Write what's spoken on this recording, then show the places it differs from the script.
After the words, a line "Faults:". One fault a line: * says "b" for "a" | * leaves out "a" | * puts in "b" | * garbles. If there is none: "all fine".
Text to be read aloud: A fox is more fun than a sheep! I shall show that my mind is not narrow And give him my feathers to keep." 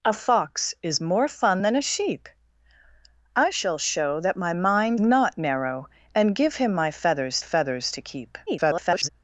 A fox is more fun than a sheep! I shall show that my mind not narrow And give him my feathers feathers to keep." [garbled]
Faults:
* leaves out "is"
* puts in "feathers"
* garbles